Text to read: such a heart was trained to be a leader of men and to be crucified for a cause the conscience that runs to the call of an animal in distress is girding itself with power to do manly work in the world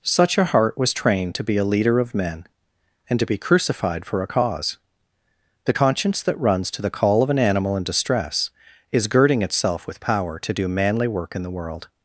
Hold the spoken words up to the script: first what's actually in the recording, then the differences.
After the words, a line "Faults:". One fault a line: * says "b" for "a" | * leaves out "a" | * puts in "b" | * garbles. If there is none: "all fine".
such a heart was trained to be a leader of men and to be crucified for a cause the conscience that runs to the call of an animal in distress is girding itself with power to do manly work in the world
Faults:
all fine